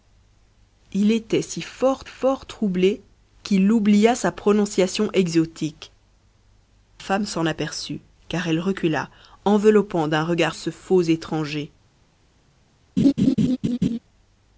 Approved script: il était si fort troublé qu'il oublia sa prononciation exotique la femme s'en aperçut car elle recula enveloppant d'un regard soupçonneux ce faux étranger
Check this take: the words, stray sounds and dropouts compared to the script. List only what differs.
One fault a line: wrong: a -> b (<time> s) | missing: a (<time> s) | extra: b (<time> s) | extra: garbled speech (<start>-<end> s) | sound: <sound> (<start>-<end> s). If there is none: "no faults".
extra: fort (2.0 s)
missing: la (5.9 s)
missing: soupçonneux (10.6 s)
sound: laugh (13.0-14.0 s)